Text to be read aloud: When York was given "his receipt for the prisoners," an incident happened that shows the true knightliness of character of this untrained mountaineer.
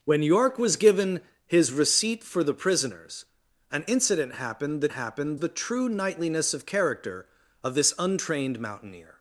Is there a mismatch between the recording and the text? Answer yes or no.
yes